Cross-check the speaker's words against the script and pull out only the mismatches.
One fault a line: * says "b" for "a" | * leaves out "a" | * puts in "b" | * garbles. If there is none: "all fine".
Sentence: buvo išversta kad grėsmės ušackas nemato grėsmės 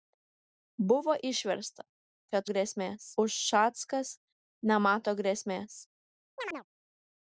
all fine